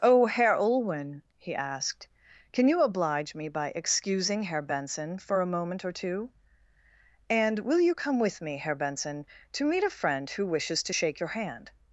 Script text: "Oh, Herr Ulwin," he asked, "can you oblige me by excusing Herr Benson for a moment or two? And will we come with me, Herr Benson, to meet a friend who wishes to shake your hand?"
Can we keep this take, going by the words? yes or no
no